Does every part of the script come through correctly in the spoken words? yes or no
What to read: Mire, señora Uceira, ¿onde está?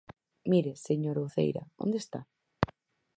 yes